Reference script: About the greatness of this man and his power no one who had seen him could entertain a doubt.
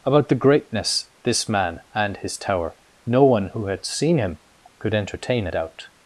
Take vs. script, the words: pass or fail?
fail